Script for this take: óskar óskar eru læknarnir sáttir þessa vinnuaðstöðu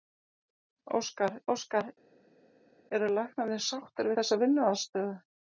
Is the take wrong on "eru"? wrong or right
right